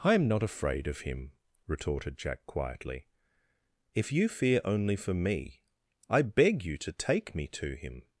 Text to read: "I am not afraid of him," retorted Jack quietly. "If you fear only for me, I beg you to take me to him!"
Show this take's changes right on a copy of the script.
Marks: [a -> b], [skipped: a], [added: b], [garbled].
"I am not afraid of him," retorted Jack quietly. "If you fear only for me, I beg you to take me to him!"